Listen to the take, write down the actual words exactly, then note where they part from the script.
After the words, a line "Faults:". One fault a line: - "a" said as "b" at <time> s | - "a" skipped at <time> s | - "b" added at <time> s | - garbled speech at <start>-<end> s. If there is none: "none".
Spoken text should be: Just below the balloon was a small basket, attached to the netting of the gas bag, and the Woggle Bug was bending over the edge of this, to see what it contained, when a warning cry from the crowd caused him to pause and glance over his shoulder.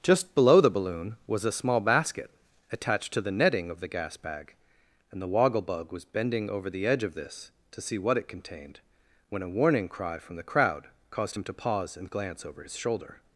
Just below the balloon was a small basket, attached to the netting of the gas bag, and the Woggle Bug was bending over the edge of this, to see what it contained, when a warning cry from the crowd caused him to pause and glance over his shoulder.
Faults:
none